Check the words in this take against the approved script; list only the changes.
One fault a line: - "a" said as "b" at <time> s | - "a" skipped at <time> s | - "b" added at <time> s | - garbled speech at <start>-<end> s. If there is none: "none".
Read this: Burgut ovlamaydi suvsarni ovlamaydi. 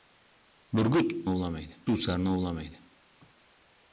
none